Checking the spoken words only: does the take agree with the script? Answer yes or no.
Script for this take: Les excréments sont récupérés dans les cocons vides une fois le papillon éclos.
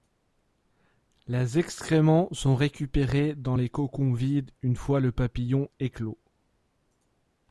yes